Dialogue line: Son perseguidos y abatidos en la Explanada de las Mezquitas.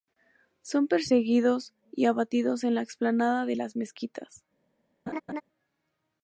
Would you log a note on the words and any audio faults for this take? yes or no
yes